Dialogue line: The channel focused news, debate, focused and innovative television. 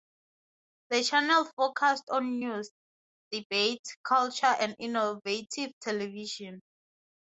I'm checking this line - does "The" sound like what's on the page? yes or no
yes